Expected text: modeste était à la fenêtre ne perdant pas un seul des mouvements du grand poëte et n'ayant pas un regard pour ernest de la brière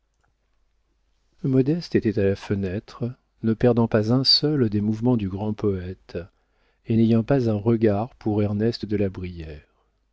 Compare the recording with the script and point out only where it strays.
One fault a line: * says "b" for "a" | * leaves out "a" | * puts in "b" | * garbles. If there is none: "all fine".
all fine